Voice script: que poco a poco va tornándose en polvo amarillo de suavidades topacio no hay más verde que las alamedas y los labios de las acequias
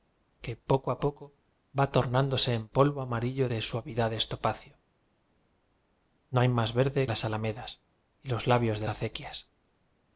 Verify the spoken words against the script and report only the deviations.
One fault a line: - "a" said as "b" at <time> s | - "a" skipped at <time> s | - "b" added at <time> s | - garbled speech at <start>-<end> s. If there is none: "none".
- "que" skipped at 7.1 s
- "las" skipped at 8.9 s